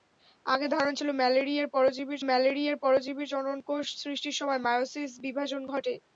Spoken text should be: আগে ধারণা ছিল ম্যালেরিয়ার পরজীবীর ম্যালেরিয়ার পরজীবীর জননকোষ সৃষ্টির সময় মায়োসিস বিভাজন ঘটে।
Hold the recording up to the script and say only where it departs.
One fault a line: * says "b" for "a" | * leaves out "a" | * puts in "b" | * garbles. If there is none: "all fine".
all fine